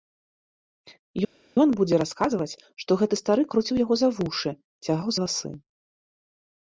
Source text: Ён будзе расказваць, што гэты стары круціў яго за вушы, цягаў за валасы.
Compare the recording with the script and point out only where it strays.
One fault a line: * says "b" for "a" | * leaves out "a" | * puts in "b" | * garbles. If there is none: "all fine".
* leaves out "за"